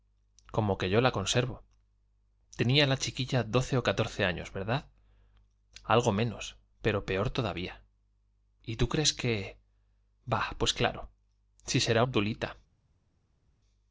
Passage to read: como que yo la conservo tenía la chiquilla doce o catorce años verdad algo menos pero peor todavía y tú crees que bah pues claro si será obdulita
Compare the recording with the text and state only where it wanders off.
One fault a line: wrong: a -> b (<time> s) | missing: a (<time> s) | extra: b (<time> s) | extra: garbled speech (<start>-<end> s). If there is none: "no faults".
no faults